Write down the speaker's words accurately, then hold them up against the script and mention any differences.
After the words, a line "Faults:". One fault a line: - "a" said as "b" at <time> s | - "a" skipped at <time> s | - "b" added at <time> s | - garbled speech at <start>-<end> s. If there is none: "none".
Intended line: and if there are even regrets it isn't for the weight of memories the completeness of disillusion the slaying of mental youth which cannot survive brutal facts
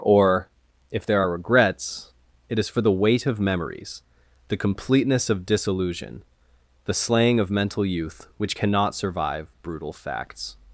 or if there are regrets it is for the weight of memories the completeness of disillusion the slaying of mental youth which cannot survive brutal facts
Faults:
- "and" said as "or" at 0.0 s
- "even" skipped at 1.3 s
- "isn't" said as "is" at 2.6 s